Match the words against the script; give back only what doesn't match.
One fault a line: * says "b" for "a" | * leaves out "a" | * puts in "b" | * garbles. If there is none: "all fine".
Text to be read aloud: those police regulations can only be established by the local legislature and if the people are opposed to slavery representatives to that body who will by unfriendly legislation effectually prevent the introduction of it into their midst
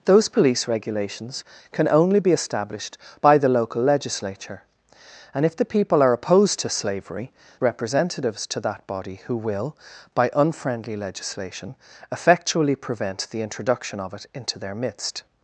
all fine